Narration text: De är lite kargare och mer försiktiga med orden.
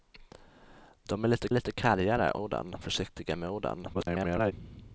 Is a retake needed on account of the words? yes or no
yes